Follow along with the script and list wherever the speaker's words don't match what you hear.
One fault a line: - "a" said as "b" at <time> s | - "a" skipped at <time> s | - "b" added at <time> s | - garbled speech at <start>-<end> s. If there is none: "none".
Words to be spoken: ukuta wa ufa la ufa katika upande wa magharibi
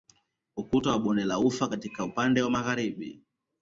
- "ufa" said as "bonde" at 1.0 s